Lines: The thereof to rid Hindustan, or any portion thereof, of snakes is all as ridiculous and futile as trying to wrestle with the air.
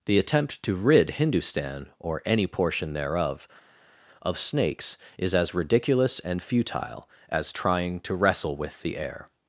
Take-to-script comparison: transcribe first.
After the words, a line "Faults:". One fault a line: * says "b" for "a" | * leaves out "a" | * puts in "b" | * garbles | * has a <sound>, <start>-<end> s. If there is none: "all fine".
The attempt to rid Hindustan, or any portion thereof, of snakes is as ridiculous and futile as trying to wrestle with the air.
Faults:
* says "attempt" for "thereof"
* leaves out "all"